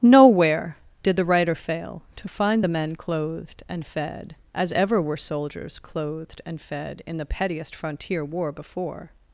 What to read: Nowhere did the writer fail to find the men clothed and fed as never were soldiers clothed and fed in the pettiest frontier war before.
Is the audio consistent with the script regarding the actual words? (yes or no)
no